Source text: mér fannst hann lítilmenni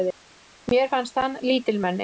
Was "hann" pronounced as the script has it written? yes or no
yes